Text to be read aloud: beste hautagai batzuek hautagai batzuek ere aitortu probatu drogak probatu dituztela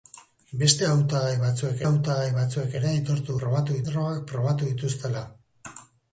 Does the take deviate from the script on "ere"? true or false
false